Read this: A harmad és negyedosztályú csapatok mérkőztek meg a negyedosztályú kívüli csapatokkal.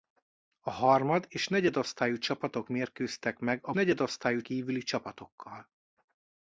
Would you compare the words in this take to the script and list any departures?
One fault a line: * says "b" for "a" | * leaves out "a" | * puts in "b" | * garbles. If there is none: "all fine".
all fine